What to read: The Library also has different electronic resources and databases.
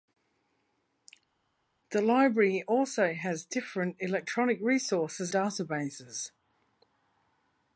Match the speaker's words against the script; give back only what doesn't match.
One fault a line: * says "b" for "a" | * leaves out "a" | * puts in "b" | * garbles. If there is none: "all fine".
* leaves out "and"